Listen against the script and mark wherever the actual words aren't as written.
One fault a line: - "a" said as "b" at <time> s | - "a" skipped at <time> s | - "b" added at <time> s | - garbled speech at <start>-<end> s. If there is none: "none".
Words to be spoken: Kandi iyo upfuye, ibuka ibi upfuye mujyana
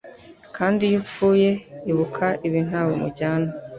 - "upfuye" said as "ntawe" at 2.7 s